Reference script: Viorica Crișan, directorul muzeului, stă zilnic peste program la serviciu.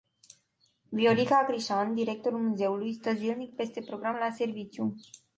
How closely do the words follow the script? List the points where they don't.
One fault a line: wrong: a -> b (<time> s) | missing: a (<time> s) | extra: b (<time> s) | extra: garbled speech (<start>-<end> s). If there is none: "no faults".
no faults